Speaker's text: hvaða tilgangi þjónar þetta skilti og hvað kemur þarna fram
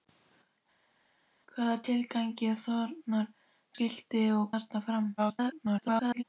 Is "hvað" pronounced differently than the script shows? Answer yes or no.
yes